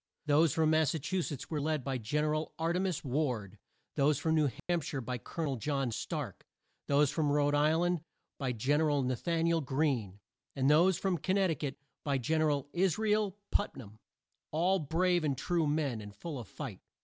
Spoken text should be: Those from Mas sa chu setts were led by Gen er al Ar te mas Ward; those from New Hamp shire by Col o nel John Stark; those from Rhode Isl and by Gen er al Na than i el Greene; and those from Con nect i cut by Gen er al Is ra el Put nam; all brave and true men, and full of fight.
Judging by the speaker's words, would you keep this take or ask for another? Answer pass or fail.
pass